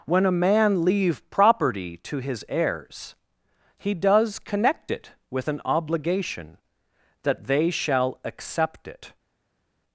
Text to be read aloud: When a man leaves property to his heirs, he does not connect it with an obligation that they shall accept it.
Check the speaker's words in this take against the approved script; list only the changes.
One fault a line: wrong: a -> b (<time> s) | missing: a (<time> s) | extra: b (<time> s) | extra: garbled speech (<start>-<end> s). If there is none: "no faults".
wrong: leaves -> leave (0.8 s)
missing: not (4.4 s)